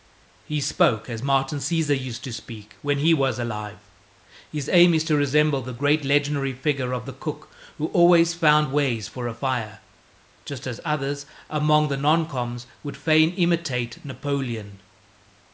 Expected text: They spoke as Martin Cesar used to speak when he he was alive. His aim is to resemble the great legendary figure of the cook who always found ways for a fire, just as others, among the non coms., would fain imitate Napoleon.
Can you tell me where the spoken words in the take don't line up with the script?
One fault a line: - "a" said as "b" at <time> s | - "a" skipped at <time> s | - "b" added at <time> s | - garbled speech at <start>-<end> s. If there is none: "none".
- "They" said as "He" at 0.4 s
- "he" skipped at 3.1 s